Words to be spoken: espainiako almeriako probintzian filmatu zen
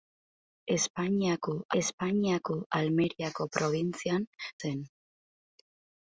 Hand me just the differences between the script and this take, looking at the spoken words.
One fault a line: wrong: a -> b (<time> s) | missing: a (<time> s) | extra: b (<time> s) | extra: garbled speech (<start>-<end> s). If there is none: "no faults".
extra: espainiako (1.8 s)
missing: filmatu (4.3 s)